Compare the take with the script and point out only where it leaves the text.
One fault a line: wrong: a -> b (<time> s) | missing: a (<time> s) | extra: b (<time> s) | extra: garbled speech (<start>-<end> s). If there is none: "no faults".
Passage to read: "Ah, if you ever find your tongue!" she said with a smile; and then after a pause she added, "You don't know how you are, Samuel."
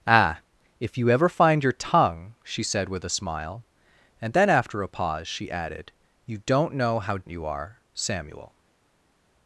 no faults